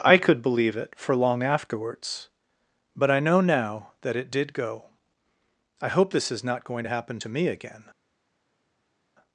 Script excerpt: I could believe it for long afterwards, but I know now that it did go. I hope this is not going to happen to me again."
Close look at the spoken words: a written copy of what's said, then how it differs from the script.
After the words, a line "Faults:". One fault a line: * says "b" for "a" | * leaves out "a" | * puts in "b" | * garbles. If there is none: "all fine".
I could believe it for long afterwards, but I know now that it did go. I hope this is not going to happen to me again."
Faults:
all fine